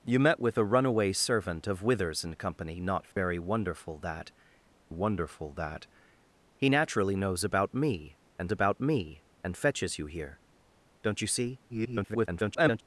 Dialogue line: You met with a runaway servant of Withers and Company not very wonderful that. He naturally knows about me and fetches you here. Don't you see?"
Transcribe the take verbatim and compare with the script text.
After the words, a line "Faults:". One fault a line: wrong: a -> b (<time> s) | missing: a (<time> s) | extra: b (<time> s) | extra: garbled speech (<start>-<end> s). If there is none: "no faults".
You met with a runaway servant of Withers and Company not very wonderful that wonderful that. He naturally knows about me and about me and fetches you here. Don't you see?" [garbled]
Faults:
extra: wonderful that (4.9 s)
extra: about me and (8.5 s)
extra: garbled speech (11.7-12.8 s)